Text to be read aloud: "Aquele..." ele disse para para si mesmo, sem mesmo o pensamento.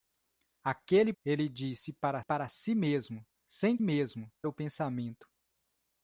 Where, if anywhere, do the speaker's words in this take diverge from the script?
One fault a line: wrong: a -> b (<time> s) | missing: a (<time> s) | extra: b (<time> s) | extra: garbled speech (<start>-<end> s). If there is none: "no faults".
no faults